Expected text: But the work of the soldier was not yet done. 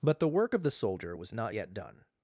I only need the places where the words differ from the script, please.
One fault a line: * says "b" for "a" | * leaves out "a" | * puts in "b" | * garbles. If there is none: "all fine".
all fine